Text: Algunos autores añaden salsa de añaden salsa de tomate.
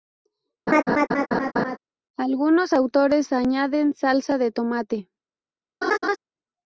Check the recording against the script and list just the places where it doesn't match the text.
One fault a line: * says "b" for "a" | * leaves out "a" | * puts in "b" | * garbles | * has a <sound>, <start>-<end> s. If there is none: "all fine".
* has a laugh, 0.7-1.8 s
* leaves out "añaden salsa de"
* has a laugh, 5.8-6.2 s